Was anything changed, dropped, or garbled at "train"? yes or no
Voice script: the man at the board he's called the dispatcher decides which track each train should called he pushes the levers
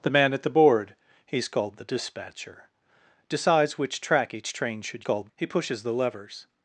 no